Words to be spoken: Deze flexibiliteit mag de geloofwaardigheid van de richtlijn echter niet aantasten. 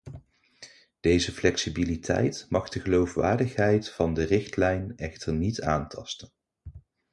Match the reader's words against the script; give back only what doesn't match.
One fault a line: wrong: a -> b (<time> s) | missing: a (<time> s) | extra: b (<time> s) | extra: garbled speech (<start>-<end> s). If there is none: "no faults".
no faults